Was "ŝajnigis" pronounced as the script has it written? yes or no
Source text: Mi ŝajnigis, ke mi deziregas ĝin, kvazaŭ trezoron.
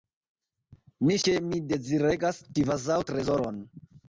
no